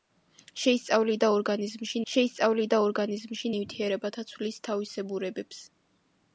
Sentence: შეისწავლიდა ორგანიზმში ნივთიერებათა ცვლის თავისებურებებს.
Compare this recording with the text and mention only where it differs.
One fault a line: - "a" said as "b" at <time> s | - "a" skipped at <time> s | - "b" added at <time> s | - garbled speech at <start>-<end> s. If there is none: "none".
- "შეისწავლიდა ორგანიზმში" added at 2.1 s